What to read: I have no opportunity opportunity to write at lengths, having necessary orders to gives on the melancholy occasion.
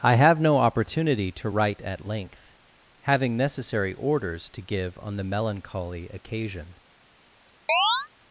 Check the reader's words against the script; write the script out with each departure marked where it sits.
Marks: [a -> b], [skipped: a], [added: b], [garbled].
I have no opportunity [skipped: opportunity] to write at [lengths, -> length] having necessary orders to [gives -> give] on the melancholy occasion.